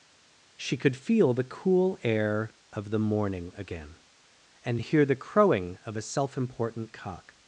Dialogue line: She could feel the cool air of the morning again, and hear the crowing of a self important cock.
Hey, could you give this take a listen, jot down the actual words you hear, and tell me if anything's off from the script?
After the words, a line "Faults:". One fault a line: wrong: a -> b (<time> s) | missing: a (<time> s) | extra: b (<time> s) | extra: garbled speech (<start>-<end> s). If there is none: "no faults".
She could feel the cool air of the morning again, and hear the crowing of a self important cock.
Faults:
no faults